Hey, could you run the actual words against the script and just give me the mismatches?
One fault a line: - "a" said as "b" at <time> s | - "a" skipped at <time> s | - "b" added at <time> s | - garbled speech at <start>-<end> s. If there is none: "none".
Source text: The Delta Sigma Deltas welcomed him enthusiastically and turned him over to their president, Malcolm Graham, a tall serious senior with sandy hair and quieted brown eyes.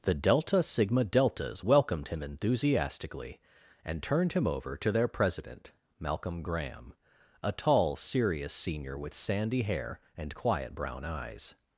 - "quieted" said as "quiet" at 10.3 s